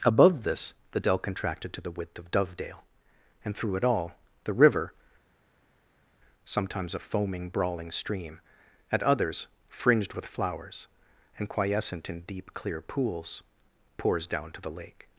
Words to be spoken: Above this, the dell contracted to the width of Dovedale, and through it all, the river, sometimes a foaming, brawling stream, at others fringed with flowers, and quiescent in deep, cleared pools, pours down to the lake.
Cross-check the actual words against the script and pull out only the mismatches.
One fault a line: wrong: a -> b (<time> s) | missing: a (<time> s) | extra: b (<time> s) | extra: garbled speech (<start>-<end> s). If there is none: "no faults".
wrong: cleared -> clear (12.5 s)